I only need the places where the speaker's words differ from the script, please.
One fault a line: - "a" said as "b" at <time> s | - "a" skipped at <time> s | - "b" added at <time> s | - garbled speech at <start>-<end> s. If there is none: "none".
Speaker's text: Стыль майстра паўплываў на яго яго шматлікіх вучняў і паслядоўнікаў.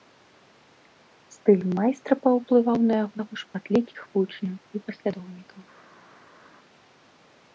none